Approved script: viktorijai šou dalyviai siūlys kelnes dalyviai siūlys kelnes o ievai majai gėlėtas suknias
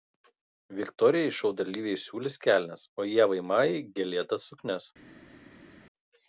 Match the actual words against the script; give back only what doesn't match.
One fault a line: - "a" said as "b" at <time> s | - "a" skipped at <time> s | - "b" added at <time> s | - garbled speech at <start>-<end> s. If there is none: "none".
- "dalyviai siūlys kelnes" skipped at 2.9 s